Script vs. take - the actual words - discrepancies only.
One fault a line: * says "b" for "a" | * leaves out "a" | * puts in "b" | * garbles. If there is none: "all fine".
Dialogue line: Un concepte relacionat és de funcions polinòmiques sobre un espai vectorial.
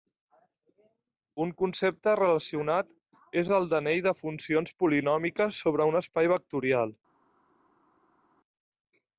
* puts in "el d'anell"